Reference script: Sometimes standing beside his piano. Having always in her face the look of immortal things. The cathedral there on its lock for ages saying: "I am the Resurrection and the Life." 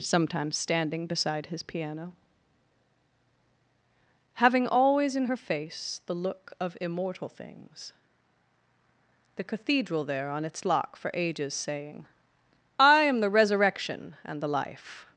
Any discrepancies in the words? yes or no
no